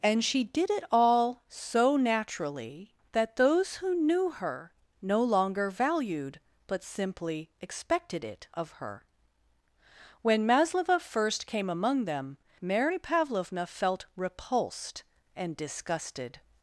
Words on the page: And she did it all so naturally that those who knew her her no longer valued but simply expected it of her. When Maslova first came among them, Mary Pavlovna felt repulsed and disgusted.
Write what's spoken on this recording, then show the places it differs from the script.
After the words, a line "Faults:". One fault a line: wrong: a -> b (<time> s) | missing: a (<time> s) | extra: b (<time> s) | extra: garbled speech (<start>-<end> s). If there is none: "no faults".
And she did it all so naturally that those who knew her no longer valued but simply expected it of her. When Maslova first came among them, Mary Pavlovna felt repulsed and disgusted.
Faults:
missing: her (4.7 s)